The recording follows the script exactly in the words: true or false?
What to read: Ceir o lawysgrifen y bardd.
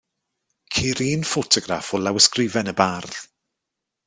false